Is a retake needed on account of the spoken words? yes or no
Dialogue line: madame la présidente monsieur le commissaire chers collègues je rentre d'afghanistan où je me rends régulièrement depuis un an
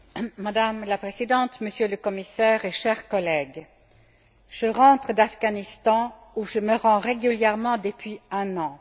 no